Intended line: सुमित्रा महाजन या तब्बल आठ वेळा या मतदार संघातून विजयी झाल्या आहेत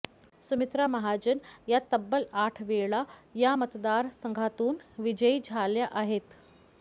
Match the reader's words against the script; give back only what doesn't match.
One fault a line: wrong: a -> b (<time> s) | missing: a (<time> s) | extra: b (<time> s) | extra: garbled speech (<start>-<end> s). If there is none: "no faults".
no faults